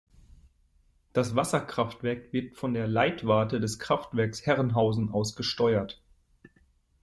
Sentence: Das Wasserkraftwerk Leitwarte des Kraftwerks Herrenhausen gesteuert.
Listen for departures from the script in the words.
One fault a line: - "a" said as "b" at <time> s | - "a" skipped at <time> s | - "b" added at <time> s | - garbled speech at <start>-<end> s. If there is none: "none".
- "wird von der" added at 2.3 s
- "aus" added at 5.1 s